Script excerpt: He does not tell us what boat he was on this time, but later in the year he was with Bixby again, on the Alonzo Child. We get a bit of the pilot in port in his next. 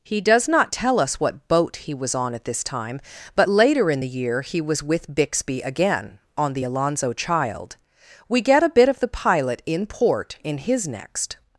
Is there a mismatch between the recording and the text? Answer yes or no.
yes